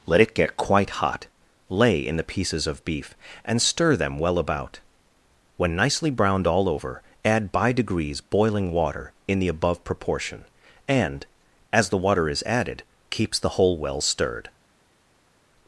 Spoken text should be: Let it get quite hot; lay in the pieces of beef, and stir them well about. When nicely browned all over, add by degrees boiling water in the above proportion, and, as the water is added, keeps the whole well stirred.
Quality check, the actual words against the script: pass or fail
pass